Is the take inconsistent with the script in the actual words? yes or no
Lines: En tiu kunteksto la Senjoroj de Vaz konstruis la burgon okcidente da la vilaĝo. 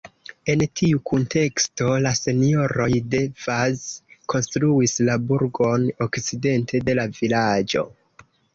yes